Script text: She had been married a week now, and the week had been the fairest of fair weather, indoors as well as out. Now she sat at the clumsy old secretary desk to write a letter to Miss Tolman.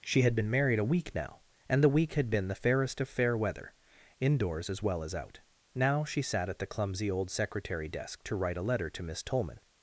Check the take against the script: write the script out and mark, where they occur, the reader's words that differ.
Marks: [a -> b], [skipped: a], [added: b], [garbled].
She had been married a week now, and the week had been the fairest of fair weather, indoors as well as out. Now she sat at the clumsy old secretary desk to write a letter to Miss Tolman.